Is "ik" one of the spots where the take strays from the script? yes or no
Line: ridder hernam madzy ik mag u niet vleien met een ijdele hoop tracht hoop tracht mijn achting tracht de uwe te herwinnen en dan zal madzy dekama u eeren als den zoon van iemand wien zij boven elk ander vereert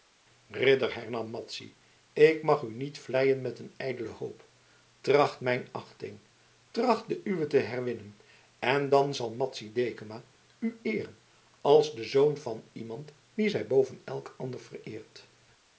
no